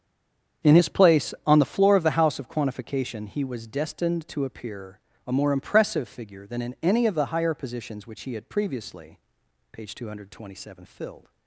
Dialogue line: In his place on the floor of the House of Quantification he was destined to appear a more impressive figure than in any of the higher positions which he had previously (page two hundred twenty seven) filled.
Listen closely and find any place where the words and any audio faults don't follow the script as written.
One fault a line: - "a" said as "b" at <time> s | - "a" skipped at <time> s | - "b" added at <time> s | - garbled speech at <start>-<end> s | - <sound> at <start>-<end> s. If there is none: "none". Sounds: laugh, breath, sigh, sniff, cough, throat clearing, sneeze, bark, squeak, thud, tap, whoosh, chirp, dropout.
none